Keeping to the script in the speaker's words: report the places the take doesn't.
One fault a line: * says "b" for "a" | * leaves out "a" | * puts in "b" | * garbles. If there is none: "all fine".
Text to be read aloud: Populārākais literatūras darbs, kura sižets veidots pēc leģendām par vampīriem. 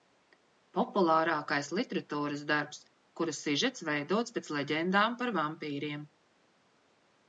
all fine